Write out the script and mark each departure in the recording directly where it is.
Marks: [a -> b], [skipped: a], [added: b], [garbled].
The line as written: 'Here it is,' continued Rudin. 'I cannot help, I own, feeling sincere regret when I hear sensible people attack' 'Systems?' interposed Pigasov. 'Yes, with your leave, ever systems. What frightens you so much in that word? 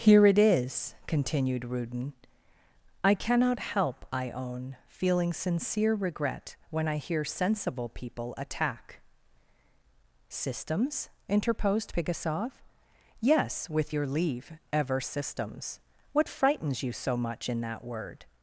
'Here it is,' continued Rudin. 'I cannot help, I own, feeling sincere regret when I hear sensible people attack' 'Systems?' interposed Pigasov. 'Yes, with your leave, ever systems. What frightens you so much in that word?